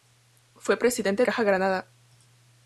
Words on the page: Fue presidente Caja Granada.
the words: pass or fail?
pass